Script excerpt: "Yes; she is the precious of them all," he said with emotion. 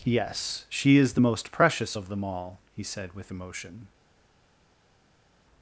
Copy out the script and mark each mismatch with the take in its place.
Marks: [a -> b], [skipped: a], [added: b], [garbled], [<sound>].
"Yes; she is the [added: most] precious of them all," he said with emotion.